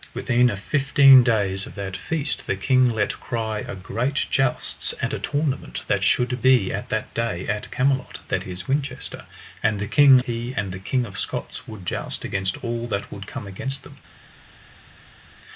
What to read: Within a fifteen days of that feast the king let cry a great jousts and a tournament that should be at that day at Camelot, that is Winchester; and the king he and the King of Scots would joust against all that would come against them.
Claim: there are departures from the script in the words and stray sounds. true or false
false